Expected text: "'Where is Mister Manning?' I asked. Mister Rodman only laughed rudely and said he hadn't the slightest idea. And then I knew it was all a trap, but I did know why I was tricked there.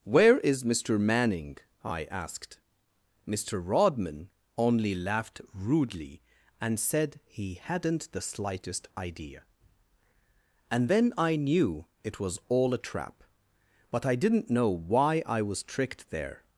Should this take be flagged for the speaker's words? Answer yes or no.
yes